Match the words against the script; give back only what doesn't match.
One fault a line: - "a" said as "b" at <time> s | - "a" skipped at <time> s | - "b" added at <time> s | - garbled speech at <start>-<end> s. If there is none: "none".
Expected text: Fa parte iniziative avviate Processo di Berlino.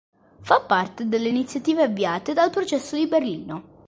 - "delle" added at 1.1 s
- "dal" added at 2.3 s